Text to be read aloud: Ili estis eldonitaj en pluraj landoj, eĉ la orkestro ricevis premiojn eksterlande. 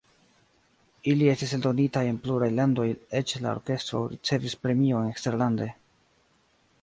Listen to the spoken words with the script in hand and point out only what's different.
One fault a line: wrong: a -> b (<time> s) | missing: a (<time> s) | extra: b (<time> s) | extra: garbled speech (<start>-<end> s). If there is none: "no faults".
no faults